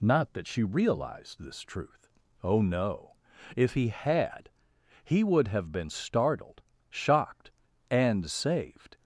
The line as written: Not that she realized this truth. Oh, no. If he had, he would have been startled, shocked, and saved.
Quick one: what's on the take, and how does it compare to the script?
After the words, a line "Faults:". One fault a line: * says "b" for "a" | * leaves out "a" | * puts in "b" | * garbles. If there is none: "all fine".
Not that she realized this truth. Oh, no. If he had, he would have been startled, shocked, and saved.
Faults:
all fine